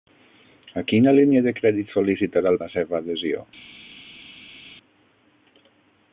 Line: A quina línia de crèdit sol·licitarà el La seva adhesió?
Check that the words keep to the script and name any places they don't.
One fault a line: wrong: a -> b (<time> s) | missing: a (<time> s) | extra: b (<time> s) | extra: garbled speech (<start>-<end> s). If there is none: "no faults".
no faults